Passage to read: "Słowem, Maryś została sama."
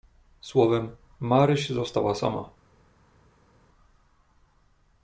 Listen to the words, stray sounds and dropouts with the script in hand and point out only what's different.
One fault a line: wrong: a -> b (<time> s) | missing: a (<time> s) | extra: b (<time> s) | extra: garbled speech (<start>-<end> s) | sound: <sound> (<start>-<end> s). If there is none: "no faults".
no faults